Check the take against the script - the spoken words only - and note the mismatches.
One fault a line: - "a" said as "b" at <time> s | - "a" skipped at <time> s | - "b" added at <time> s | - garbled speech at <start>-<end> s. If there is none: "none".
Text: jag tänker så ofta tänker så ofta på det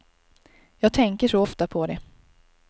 - "tänker så ofta" skipped at 1.7 s